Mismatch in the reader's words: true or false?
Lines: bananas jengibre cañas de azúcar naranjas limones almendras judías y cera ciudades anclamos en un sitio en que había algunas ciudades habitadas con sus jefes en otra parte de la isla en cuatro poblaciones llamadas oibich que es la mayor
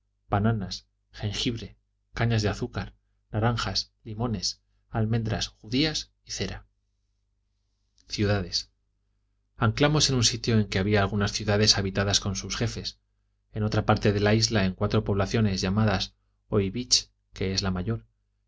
false